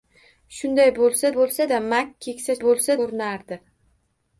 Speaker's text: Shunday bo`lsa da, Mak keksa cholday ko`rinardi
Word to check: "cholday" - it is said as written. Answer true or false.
false